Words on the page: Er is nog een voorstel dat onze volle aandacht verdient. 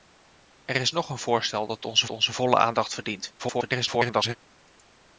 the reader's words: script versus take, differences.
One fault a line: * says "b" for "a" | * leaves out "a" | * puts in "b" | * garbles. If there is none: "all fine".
* puts in "onze"
* garbles